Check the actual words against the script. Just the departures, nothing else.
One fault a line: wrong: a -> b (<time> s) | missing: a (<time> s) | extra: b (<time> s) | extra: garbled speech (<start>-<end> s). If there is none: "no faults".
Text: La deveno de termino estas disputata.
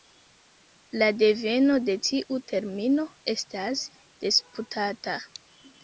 extra: tiu (2.1 s)